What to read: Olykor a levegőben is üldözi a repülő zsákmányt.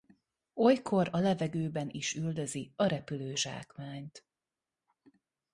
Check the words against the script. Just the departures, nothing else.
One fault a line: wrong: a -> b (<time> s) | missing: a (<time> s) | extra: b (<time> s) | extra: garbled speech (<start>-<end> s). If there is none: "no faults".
no faults